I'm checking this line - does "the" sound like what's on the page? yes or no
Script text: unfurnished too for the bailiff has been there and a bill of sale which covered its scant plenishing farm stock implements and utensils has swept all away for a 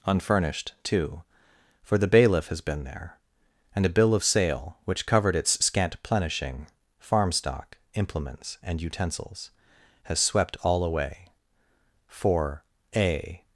yes